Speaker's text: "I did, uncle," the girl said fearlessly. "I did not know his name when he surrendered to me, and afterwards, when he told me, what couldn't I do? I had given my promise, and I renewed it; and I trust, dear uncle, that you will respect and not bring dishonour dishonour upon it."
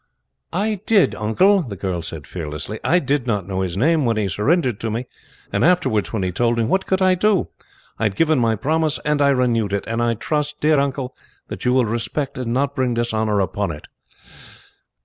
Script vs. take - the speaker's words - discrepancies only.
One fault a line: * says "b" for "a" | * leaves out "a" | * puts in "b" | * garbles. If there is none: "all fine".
* says "could" for "couldn't"
* leaves out "dishonour"